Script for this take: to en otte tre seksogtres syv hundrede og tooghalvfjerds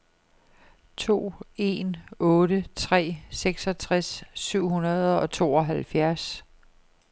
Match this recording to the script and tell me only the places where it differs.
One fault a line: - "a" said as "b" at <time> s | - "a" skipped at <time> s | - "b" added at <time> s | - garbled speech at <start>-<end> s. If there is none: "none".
none